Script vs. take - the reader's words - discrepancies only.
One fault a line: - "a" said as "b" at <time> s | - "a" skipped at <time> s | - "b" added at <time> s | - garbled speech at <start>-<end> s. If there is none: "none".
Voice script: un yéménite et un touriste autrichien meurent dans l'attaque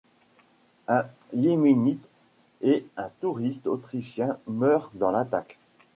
none